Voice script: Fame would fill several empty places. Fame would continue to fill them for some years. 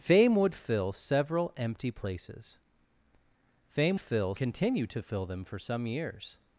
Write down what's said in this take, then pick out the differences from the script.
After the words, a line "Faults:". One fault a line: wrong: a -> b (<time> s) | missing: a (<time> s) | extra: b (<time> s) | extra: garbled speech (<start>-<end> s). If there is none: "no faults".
Fame would fill several empty places. Fame fill continue to fill them for some years.
Faults:
wrong: would -> fill (4.0 s)